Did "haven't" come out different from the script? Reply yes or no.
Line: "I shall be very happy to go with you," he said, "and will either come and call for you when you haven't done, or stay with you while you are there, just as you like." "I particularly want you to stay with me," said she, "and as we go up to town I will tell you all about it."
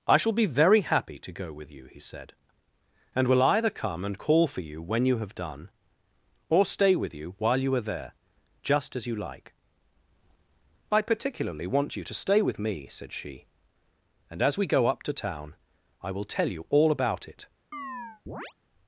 yes